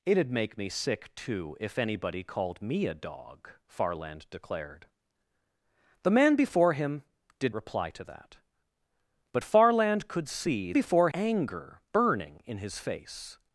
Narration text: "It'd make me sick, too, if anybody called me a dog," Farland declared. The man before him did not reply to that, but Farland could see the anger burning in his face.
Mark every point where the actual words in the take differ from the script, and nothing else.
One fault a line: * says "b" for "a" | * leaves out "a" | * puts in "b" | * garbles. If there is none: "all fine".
* leaves out "not"
* says "before" for "the"